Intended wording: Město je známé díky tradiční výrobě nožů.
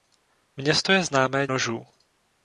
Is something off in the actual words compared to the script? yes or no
yes